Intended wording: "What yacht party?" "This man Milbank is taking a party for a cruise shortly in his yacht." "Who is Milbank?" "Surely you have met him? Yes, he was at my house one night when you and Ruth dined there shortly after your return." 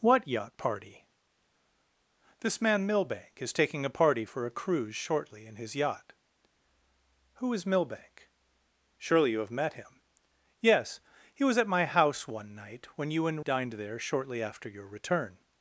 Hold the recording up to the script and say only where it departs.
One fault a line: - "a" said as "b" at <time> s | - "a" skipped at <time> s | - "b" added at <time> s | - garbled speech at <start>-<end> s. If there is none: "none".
- "Ruth" skipped at 13.4 s